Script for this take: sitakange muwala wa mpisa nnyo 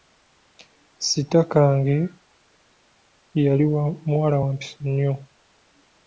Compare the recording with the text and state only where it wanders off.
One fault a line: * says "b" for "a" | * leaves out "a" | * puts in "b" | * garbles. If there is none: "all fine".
* puts in "yali"